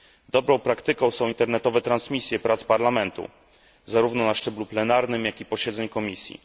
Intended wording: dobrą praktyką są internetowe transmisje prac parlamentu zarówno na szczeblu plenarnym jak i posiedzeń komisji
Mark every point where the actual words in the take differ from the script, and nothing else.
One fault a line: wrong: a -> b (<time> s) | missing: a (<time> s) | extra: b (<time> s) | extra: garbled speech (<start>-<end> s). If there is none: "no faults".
no faults